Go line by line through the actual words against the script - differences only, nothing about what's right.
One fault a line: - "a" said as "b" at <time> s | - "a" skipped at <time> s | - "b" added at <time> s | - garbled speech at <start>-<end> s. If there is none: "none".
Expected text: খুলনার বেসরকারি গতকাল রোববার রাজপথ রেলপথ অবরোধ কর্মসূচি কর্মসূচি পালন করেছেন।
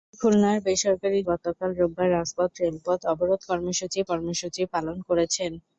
none